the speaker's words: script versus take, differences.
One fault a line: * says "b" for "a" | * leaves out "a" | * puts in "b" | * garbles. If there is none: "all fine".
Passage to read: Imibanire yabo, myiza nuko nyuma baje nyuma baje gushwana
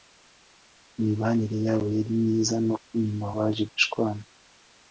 * puts in "yari"
* leaves out "nyuma baje"